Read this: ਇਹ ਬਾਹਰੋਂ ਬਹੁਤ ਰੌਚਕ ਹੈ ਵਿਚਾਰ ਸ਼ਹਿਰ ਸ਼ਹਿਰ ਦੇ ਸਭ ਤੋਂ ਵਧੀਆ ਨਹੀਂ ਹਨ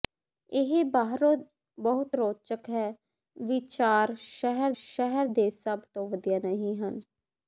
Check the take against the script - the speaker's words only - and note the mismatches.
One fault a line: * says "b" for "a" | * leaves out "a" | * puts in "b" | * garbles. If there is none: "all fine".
all fine